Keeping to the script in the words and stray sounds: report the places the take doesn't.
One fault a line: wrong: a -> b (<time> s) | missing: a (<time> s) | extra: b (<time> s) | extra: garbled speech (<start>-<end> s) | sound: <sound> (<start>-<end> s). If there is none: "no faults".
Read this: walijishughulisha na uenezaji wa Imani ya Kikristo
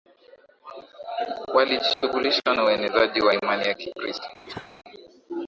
sound: dropout (1.9-2.0 s)
sound: cough (4.5-4.7 s)